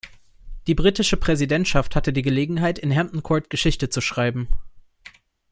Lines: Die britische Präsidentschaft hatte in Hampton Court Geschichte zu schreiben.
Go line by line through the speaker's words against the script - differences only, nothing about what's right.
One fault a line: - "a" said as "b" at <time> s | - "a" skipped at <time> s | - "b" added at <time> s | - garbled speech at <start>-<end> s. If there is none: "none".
- "die Gelegenheit" added at 2.1 s